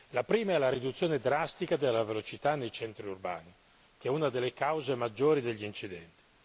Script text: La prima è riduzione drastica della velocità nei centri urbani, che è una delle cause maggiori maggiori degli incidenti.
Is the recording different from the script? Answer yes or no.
yes